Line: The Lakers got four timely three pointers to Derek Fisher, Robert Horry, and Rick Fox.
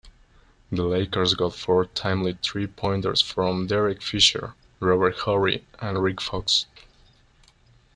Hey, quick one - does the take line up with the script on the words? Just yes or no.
no